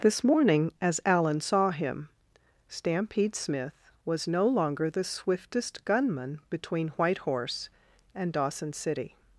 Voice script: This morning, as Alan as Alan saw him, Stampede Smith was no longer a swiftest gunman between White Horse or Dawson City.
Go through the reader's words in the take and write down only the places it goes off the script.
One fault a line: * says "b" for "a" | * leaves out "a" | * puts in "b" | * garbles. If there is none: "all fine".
* leaves out "as Alan"
* says "the" for "a"
* says "and" for "or"